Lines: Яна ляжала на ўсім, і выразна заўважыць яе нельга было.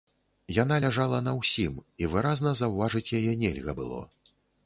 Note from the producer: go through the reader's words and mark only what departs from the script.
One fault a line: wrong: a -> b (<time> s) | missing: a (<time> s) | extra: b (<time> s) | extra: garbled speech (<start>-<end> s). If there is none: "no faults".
no faults